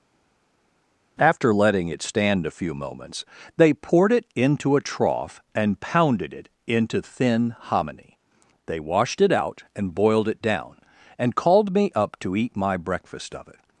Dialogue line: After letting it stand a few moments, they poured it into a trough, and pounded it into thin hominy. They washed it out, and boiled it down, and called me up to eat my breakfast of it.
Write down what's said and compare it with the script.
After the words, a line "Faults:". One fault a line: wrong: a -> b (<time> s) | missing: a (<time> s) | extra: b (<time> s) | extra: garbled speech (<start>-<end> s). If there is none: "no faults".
After letting it stand a few moments, they poured it into a trough, and pounded it into thin hominy. They washed it out, and boiled it down, and called me up to eat my breakfast of it.
Faults:
no faults